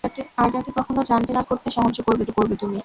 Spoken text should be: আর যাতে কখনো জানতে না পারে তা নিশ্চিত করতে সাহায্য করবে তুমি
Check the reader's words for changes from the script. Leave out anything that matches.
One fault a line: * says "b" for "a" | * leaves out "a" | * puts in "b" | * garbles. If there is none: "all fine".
* leaves out "পারে তা নিশ্চিত"
* puts in "করবে"